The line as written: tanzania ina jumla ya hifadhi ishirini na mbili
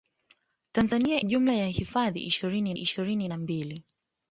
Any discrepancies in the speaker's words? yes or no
yes